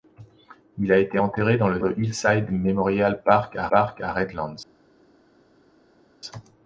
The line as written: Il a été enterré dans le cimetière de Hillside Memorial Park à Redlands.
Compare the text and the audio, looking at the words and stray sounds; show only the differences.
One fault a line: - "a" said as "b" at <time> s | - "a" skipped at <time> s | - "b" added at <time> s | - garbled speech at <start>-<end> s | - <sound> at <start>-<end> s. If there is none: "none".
- "cimetière" skipped at 1.8 s
- "Park à" added at 3.7 s